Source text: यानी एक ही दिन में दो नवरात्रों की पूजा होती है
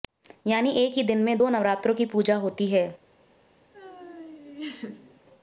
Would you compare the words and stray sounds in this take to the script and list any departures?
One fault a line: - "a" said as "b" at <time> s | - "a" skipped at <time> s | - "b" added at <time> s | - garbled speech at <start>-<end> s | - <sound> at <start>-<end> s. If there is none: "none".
- laugh at 3.7-5.2 s